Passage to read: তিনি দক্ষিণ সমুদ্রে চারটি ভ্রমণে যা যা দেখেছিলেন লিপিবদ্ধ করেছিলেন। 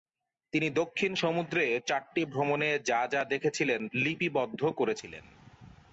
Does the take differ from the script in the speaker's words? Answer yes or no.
no